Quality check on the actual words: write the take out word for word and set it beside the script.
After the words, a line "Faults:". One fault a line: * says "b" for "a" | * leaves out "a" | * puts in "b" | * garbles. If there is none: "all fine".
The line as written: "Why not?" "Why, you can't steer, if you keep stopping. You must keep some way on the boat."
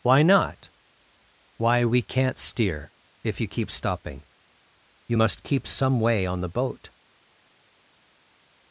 "Why not?" "Why, we can't steer, if you keep stopping. You must keep some way on the boat."
Faults:
* says "we" for "you"